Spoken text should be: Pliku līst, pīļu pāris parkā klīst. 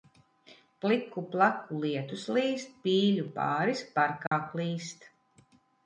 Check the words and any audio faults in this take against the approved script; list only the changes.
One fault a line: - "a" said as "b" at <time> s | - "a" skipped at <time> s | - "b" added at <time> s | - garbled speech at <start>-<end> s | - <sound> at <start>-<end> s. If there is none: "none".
- "plaku lietus" added at 1.4 s
- dropout at 4.3-4.3 s